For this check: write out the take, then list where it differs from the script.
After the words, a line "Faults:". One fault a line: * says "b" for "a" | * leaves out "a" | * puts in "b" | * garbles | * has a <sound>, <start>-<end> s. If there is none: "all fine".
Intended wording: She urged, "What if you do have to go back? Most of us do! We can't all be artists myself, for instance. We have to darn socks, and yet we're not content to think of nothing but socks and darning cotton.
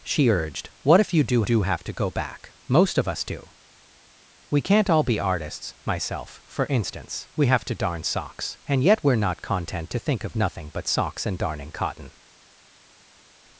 She urged, "What if you do do have to go back? Most of us do! We can't all be artists myself, for instance. We have to darn socks, and yet we're not content to think of nothing but socks and darning cotton.
Faults:
* puts in "do"